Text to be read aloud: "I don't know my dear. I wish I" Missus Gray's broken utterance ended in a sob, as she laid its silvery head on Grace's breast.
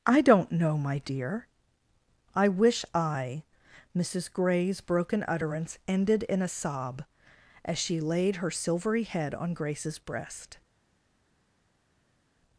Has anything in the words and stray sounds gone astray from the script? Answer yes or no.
yes